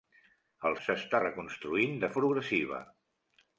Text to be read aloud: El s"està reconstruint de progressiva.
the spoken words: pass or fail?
pass